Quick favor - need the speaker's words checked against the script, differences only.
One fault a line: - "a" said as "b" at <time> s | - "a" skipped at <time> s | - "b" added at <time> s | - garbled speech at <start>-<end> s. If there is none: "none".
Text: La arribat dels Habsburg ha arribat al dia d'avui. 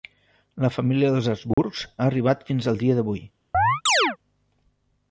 - "arribat" said as "família" at 0.8 s
- "fins" added at 2.5 s